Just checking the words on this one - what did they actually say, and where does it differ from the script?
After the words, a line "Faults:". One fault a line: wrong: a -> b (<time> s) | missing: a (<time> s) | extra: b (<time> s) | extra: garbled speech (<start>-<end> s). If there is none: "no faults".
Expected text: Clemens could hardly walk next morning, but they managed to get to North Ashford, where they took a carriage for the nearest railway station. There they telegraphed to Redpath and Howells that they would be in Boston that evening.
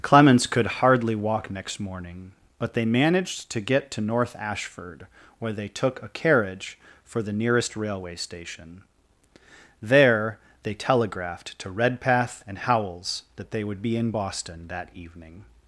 Clemens could hardly walk next morning, but they managed to get to North Ashford, where they took a carriage for the nearest railway station. There they telegraphed to Redpath and Howells that they would be in Boston that evening.
Faults:
no faults